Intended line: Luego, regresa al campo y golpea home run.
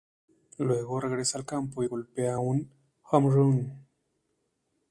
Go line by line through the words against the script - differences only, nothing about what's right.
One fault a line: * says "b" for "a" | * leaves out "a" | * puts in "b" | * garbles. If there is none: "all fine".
* puts in "un"